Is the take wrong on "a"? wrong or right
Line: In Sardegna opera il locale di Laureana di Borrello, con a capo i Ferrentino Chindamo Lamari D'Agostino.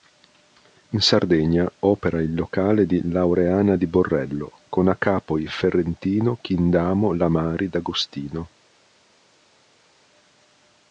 right